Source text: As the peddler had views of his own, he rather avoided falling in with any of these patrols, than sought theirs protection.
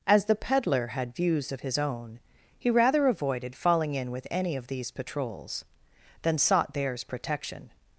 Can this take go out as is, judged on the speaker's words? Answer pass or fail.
pass